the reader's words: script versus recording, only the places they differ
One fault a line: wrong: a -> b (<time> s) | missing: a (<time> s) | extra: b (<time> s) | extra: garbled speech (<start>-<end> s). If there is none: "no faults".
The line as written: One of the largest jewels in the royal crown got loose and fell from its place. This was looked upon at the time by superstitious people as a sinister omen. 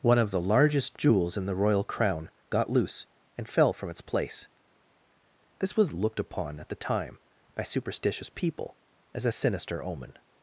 no faults